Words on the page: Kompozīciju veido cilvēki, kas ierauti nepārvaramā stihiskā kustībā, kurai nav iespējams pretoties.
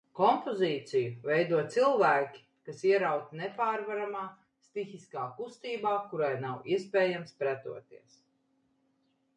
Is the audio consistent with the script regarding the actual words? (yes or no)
yes